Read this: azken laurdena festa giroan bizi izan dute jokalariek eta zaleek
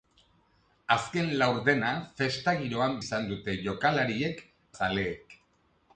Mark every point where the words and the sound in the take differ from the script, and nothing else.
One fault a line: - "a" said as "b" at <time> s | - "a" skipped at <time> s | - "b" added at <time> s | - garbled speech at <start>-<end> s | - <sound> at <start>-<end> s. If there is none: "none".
- "bizi" skipped at 3.0 s
- "eta" skipped at 4.4 s